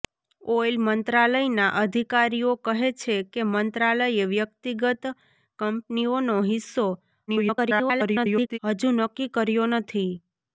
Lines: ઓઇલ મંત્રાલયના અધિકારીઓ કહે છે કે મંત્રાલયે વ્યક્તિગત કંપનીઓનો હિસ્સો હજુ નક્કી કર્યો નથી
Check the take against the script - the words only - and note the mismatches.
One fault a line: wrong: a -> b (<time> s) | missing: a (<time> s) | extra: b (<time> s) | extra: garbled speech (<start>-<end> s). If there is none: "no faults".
extra: garbled speech (7.3-8.6 s)